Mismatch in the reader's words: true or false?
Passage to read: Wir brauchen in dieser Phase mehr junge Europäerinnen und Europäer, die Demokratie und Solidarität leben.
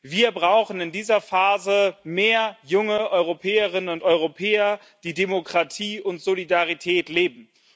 false